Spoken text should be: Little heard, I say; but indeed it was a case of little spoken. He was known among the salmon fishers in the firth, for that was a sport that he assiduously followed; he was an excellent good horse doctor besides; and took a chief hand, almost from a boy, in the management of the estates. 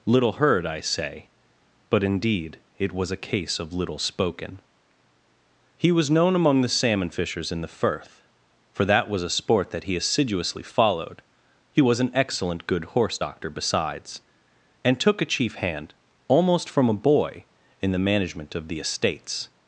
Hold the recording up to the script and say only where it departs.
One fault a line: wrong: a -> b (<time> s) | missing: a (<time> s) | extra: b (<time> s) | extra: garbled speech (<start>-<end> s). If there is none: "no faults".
no faults